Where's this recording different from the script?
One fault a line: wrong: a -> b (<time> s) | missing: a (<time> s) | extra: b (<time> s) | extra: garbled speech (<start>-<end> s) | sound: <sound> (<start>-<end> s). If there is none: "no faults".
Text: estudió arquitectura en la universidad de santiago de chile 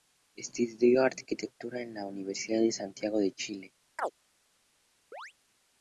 sound: chirp (4.0-4.1 s)
sound: chirp (5.1-5.3 s)